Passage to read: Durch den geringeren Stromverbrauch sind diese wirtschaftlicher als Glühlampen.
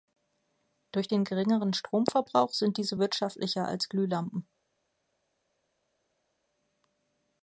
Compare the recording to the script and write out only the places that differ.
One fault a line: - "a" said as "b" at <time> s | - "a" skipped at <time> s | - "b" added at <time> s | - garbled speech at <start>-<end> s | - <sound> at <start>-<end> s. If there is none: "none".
none